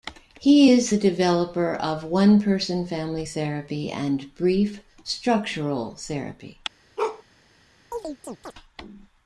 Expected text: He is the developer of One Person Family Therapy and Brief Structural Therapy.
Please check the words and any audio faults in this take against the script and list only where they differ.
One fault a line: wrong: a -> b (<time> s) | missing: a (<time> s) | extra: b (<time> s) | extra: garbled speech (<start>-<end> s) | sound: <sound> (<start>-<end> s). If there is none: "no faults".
sound: bark (7.0-7.2 s)
sound: chirp (7.9-8.5 s)